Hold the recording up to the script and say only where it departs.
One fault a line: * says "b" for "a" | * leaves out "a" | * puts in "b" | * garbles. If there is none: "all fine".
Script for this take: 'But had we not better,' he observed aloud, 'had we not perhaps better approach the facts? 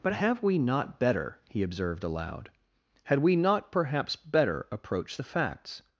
* says "have" for "had"